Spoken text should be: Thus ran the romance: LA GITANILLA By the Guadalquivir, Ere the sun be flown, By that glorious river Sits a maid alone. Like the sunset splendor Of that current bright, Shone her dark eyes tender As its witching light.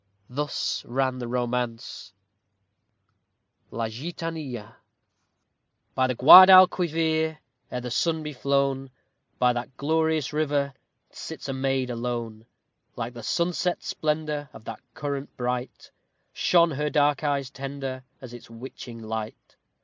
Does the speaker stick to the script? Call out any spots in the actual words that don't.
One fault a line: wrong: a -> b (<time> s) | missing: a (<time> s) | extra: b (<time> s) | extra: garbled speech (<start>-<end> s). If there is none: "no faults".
no faults